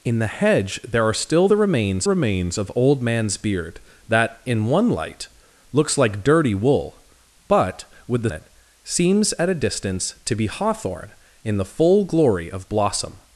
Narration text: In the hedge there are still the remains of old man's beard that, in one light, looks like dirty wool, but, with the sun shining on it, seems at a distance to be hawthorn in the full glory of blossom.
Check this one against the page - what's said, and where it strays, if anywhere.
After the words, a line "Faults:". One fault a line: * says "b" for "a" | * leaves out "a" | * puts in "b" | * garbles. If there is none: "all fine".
In the hedge there are still the remains remains of old man's beard that, in one light, looks like dirty wool, but, with the it, seems at a distance to be hawthorn in the full glory of blossom.
Faults:
* puts in "remains"
* leaves out "sun shining on"